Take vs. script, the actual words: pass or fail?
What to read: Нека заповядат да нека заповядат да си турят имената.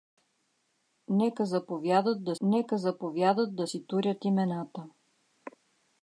pass